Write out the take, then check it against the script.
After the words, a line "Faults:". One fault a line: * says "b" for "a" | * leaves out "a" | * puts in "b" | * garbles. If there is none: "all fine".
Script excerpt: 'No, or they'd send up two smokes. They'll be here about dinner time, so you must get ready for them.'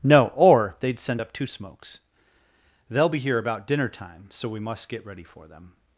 'No, or they'd send up two smokes. They'll be here about dinner time, so we must get ready for them.'
Faults:
* says "we" for "you"